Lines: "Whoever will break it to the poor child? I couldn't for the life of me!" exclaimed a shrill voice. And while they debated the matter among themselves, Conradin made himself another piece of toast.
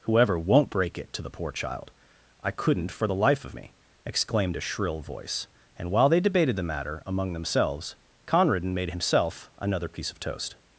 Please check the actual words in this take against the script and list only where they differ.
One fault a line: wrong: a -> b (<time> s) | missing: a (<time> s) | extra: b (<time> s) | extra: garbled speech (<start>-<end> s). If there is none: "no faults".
wrong: will -> won't (0.4 s)